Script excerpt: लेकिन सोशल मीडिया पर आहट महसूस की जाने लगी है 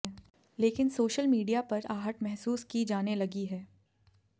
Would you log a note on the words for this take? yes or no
no